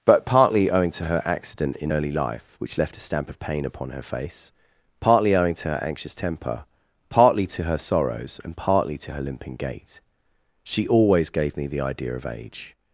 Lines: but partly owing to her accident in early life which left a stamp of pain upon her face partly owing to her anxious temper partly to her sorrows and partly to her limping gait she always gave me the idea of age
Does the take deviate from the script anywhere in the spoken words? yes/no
no